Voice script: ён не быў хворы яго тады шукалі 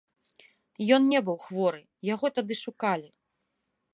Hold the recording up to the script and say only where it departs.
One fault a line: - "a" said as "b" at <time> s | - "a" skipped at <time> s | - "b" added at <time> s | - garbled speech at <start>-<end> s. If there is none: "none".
none